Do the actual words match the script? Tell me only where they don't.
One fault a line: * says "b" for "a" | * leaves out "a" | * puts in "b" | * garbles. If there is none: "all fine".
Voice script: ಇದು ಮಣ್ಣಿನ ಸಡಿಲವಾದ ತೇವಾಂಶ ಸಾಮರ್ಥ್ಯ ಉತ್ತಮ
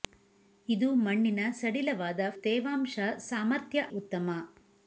all fine